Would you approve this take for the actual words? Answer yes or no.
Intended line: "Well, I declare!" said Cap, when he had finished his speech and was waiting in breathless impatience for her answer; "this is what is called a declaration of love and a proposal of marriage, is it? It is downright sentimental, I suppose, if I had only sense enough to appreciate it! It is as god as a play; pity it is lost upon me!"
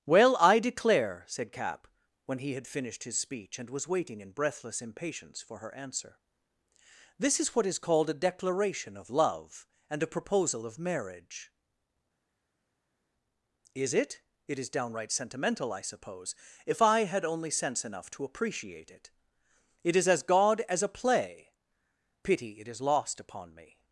yes